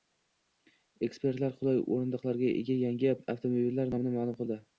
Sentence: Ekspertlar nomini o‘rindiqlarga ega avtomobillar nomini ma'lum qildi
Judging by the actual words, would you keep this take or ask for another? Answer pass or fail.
fail